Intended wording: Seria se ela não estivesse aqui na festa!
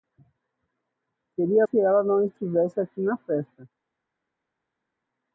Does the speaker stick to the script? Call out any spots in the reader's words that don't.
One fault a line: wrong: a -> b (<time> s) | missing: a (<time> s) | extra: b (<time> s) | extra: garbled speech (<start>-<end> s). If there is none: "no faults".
no faults